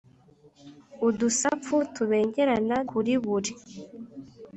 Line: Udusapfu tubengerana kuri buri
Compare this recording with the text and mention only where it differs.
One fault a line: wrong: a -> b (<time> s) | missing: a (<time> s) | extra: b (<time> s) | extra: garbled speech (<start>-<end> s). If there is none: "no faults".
no faults